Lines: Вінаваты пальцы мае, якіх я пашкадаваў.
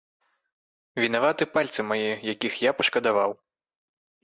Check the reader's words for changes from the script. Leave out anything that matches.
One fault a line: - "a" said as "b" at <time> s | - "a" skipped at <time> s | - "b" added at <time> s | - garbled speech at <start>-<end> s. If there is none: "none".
none